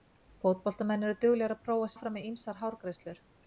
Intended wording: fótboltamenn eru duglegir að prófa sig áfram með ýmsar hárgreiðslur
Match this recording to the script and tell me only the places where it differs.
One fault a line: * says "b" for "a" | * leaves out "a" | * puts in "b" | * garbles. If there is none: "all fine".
* leaves out "sig"